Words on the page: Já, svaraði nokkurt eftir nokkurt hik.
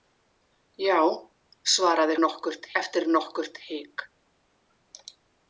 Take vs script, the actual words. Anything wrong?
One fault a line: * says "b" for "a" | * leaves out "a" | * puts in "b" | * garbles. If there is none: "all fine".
all fine